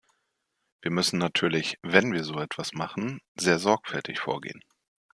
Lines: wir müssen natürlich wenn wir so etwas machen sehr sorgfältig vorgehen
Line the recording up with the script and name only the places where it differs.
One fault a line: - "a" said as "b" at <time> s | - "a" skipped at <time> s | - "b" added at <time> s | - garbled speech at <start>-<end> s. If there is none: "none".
none